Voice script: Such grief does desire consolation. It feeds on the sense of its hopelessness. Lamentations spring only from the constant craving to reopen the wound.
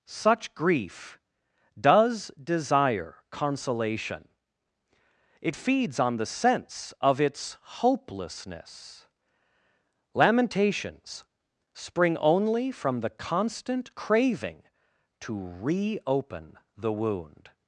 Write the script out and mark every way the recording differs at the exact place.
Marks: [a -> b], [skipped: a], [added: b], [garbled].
Such grief does desire consolation. It feeds on the sense of its hopelessness. Lamentations spring only from the constant craving to reopen the wound.